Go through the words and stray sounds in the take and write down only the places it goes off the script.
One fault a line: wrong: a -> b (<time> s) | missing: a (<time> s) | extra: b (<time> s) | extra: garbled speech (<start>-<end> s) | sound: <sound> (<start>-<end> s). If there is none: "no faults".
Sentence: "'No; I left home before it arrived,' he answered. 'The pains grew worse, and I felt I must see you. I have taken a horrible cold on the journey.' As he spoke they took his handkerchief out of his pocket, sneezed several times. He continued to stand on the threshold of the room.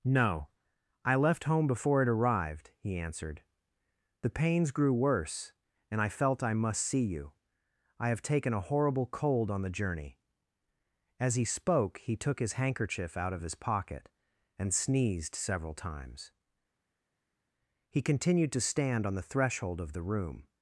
wrong: they -> he (12.0 s)
extra: and (14.6 s)